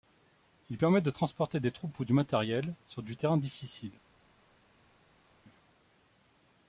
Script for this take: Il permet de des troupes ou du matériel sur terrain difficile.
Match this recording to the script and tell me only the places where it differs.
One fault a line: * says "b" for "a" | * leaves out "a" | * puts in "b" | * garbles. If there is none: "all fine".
* puts in "transporter"
* puts in "du"